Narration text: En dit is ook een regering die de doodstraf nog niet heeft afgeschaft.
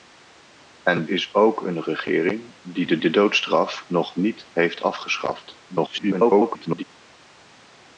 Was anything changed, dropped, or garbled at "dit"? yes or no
yes